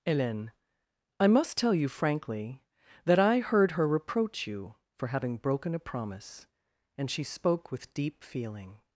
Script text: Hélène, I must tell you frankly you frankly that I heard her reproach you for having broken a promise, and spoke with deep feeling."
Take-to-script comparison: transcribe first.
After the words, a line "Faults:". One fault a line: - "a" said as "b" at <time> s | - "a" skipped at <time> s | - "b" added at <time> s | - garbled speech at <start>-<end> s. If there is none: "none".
Hélène, I must tell you frankly that I heard her reproach you for having broken a promise, and she spoke with deep feeling."
Faults:
- "you frankly" skipped at 2.6 s
- "she" added at 7.1 s